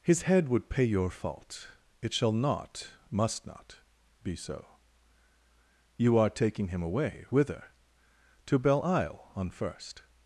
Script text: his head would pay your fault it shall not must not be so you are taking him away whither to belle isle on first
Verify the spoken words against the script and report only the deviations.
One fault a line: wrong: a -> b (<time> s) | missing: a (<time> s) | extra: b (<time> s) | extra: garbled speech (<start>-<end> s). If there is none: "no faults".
no faults